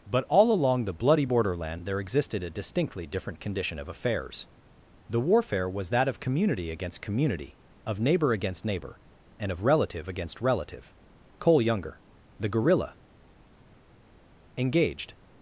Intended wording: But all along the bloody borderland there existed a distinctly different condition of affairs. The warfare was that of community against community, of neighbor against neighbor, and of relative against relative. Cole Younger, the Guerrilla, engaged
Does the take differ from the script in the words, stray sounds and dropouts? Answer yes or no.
no